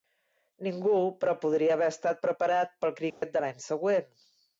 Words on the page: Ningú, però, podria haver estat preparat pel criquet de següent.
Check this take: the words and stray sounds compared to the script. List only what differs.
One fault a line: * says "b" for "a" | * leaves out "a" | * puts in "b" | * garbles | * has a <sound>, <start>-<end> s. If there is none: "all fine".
* has a dropout, 3.1-3.2 s
* puts in "l'any"